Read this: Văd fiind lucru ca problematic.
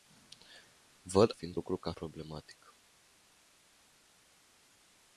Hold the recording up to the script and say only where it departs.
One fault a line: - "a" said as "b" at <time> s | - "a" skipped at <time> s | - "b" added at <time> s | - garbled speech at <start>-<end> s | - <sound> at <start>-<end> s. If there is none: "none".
none